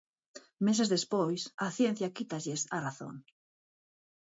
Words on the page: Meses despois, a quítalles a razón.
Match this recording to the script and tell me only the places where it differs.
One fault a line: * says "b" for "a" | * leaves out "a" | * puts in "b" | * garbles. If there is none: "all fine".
* puts in "ciencia"